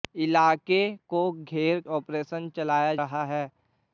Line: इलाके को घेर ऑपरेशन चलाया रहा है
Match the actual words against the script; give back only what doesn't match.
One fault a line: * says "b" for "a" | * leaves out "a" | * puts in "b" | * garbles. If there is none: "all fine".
all fine